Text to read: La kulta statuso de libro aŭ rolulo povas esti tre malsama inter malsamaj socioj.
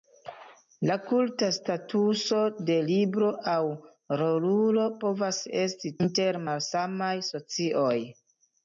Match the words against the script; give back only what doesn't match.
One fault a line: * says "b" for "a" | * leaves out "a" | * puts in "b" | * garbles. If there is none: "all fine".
* leaves out "tre malsama"